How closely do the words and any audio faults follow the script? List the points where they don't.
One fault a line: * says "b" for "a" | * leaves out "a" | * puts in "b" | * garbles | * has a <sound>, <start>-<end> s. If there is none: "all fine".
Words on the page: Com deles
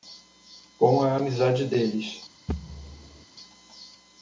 * puts in "a amizade"
* has a thud, 2.5-3.3 s